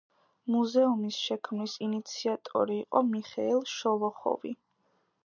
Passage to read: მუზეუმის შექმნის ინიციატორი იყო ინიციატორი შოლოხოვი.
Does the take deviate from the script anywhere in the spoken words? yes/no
yes